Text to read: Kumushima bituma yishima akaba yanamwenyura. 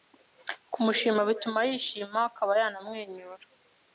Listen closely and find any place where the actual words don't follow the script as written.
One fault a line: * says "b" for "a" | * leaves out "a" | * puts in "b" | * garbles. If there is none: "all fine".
all fine